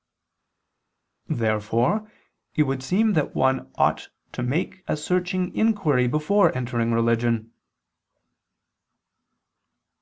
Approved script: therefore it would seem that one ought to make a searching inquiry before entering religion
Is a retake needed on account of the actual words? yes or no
no